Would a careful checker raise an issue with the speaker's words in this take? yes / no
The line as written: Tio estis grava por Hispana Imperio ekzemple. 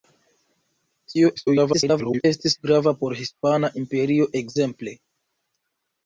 yes